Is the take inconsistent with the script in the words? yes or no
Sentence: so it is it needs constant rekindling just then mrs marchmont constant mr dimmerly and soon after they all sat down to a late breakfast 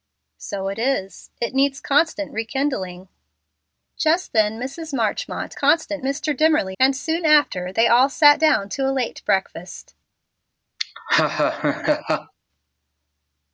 no